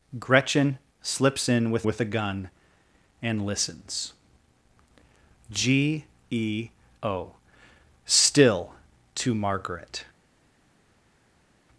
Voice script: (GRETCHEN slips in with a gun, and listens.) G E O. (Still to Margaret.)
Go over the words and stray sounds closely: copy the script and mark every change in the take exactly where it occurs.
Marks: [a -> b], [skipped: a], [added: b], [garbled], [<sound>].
(GRETCHEN slips in with [added: with] a gun, and listens.) G E O. (Still to Margaret.)